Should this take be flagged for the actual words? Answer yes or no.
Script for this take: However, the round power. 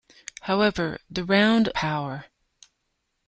no